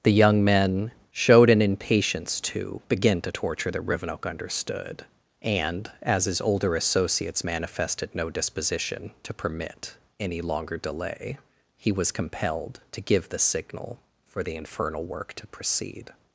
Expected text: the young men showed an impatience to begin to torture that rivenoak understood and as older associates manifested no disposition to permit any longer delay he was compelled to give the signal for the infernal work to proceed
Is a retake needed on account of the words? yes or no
yes